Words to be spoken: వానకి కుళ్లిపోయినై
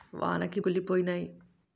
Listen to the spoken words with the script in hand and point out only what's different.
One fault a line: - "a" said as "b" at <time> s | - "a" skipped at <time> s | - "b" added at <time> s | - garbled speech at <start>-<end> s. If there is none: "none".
none